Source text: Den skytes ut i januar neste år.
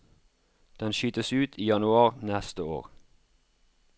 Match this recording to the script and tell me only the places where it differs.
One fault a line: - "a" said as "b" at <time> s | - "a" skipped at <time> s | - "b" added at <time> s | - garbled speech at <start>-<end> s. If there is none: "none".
none